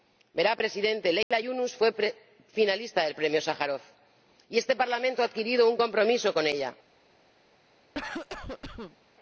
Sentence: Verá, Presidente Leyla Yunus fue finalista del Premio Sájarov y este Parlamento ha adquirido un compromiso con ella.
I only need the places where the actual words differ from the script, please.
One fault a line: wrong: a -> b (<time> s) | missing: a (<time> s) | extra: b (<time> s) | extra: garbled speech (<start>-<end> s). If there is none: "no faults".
no faults